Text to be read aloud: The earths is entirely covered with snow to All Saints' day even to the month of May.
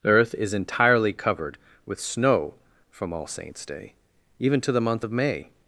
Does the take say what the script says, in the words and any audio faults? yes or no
no